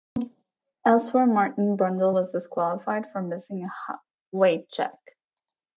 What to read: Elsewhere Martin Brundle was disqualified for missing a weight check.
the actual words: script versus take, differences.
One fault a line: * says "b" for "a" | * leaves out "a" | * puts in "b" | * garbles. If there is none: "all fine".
all fine